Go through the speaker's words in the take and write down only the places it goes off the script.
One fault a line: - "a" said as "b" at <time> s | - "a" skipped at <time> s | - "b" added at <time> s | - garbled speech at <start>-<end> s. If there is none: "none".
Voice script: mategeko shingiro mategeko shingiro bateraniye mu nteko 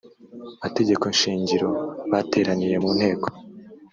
- "mategeko shingiro" skipped at 1.7 s